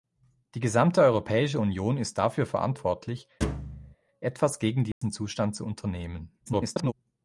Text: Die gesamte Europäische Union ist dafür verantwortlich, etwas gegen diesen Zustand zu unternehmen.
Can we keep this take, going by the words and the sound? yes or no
no